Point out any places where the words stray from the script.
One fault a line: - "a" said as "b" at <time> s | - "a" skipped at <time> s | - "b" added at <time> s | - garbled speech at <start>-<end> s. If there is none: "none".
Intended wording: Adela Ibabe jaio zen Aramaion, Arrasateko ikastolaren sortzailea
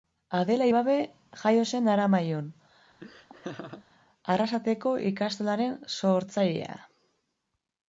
none